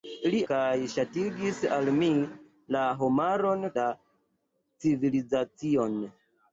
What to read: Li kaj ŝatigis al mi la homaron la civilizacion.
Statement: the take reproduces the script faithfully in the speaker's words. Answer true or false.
true